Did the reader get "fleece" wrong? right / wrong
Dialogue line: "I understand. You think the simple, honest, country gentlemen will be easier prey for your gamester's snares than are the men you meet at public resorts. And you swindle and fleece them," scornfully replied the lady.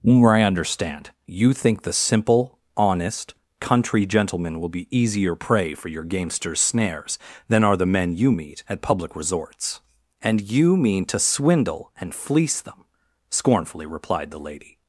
right